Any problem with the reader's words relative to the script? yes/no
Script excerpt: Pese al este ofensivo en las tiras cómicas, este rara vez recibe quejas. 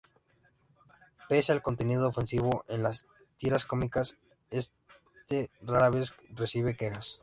yes